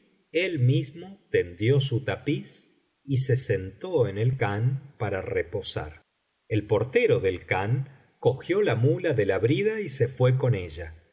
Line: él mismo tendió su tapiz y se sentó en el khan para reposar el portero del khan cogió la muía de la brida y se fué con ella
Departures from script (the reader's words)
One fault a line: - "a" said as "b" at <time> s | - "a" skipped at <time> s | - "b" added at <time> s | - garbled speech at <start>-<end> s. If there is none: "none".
none